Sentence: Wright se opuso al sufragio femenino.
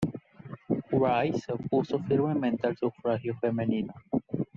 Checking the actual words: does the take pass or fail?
fail